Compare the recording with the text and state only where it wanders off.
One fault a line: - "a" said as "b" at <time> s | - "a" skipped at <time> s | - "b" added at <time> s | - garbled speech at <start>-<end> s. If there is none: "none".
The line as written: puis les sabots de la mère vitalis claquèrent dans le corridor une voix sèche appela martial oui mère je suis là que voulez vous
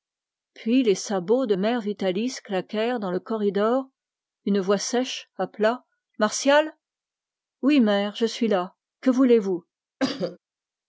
- "la" skipped at 1.5 s